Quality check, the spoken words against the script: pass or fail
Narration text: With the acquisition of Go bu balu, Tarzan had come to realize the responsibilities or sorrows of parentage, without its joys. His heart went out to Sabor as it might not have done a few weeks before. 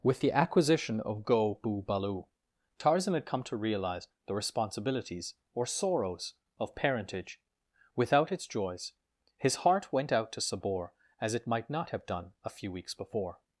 pass